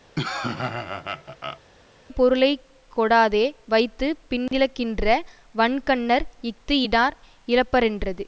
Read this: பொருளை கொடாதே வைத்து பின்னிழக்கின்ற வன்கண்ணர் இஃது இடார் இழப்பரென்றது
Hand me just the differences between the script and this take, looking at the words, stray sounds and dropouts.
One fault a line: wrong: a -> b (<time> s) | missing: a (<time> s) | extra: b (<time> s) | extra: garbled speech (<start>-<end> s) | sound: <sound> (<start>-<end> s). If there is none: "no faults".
sound: laugh (0.2-1.6 s)
sound: dropout (4.5-4.5 s)